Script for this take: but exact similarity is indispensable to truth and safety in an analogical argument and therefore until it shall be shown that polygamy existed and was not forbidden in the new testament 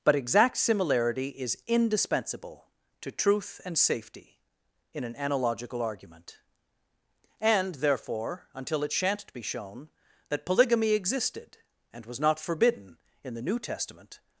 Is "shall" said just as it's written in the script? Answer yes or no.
no